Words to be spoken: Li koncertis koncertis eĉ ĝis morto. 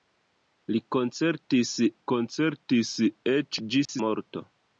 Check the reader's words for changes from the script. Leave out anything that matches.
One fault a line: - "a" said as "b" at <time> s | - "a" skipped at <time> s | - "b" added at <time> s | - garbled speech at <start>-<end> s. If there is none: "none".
none